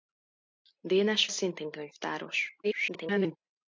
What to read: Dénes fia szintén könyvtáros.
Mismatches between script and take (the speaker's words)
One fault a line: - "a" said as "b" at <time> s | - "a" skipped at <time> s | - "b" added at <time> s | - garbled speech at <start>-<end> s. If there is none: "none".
- "fia" skipped at 1.3 s
- garbled speech at 2.6-3.4 s